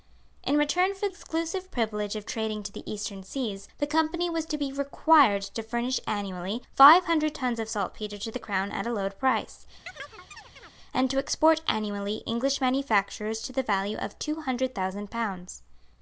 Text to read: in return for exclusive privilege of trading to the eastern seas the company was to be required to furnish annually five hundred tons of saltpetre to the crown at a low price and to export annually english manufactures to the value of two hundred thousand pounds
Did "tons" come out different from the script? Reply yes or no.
no